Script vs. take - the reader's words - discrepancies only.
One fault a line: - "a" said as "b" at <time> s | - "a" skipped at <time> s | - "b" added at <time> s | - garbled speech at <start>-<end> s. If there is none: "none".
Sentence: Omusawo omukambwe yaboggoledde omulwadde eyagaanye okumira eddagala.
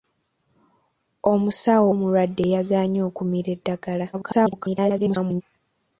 - "omukambwe yaboggoledde" skipped at 1.9 s
- garbled speech at 4.1-5.4 s